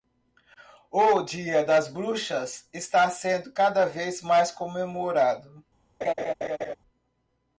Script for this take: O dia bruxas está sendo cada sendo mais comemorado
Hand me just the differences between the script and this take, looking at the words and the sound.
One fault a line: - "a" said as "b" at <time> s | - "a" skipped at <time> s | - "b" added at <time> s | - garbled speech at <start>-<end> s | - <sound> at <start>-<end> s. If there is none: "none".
- "das" added at 1.6 s
- "sendo" said as "vez" at 3.8 s
- laugh at 6.0-6.8 s